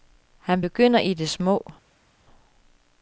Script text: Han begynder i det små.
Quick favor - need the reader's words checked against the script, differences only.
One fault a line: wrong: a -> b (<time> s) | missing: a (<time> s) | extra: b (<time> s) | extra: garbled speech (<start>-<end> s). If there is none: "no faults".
no faults